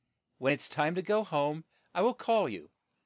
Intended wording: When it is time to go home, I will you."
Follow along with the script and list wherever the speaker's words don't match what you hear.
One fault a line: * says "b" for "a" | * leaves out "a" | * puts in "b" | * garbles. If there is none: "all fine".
* puts in "call"